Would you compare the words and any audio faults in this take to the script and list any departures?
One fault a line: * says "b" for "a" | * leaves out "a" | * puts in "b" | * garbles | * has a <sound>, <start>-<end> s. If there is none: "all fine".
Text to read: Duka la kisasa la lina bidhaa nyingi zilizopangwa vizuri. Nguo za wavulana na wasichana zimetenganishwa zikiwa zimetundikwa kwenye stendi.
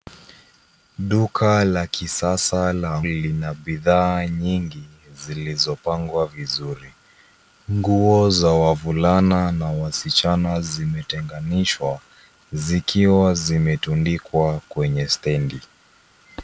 all fine